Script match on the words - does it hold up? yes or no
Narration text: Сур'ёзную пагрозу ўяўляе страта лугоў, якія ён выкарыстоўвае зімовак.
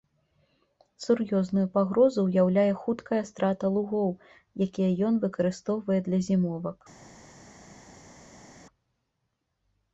no